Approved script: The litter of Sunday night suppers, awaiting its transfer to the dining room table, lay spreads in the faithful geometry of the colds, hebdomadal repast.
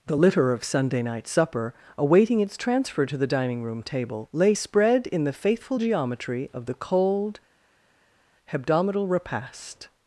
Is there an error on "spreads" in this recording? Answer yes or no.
yes